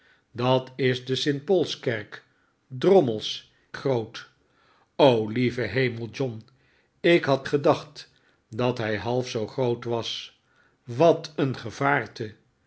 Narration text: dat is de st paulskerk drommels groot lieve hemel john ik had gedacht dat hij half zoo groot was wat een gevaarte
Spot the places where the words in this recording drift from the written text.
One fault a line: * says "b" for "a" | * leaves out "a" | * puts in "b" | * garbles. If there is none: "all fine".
all fine